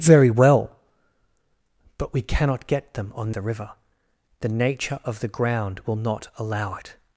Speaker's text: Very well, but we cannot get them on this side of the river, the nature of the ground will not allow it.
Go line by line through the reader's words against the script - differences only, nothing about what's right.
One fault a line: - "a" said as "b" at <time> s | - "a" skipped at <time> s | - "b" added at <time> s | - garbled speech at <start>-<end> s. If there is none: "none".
- "this side of" skipped at 3.3 s